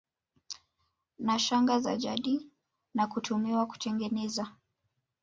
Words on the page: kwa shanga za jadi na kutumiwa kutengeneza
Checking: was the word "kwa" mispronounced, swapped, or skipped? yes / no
yes